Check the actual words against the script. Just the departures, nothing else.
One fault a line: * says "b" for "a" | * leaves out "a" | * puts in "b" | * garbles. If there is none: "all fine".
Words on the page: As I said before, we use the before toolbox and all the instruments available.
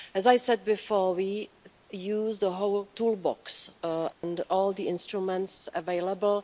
* says "whole" for "before"